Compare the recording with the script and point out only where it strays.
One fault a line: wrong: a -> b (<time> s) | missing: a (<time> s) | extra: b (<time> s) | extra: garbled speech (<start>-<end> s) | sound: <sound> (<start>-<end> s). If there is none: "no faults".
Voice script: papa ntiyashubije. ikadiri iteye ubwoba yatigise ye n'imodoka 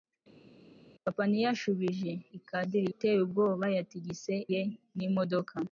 no faults